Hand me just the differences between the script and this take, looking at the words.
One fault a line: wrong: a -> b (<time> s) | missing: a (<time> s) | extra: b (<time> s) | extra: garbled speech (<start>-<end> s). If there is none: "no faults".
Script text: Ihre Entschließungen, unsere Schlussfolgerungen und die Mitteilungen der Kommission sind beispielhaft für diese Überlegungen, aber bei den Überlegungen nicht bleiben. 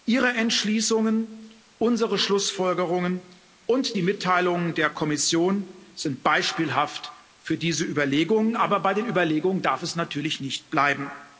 extra: darf es natürlich (9.6 s)